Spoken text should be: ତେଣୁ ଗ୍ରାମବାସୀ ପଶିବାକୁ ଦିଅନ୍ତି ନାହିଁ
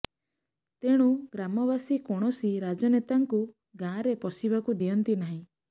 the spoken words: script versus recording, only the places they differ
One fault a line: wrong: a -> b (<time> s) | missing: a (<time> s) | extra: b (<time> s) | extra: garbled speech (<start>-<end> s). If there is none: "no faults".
extra: କୌଣସି ରାଜନେତାଙ୍କୁ ଗାଁରେ (2.1 s)